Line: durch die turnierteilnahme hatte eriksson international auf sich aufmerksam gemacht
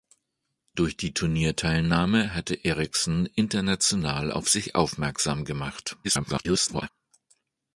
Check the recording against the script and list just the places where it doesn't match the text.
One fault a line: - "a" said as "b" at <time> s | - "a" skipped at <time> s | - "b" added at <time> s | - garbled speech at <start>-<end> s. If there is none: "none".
- garbled speech at 6.0-6.9 s